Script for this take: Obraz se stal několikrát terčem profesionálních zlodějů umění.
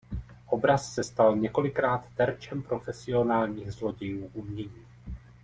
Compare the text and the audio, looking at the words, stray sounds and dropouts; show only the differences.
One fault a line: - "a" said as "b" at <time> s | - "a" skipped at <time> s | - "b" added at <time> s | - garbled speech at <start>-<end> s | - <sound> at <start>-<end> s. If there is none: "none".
none